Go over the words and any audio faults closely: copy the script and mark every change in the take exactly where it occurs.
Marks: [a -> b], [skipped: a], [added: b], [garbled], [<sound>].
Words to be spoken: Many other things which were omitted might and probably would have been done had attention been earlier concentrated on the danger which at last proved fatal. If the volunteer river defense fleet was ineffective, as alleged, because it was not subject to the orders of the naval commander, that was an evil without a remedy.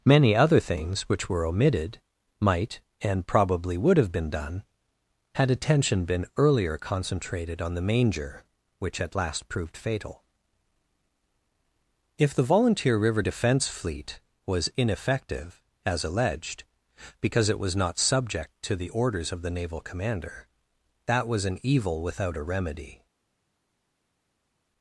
Many other things which were omitted might and probably would have been done had attention been earlier concentrated on the [danger -> manger] which at last proved fatal. If the volunteer river defense fleet was ineffective, as alleged, because it was not subject to the orders of the naval commander, that was an evil without a remedy.